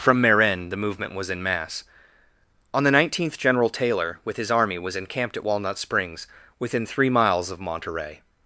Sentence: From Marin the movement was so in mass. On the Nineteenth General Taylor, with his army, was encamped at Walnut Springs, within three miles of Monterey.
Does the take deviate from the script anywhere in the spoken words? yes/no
yes